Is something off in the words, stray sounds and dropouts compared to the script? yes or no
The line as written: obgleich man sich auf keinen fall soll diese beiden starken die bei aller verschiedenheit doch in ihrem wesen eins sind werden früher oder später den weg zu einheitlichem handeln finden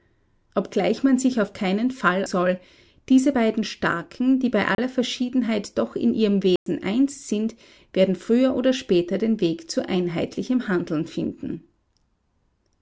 yes